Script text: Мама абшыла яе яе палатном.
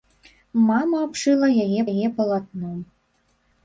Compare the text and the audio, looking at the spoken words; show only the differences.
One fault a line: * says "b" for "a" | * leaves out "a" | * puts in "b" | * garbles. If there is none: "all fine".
all fine